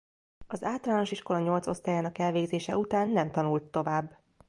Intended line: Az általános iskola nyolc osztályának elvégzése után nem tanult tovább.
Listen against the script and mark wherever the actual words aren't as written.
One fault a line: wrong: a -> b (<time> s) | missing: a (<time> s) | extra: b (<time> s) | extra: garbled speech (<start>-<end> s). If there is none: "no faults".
no faults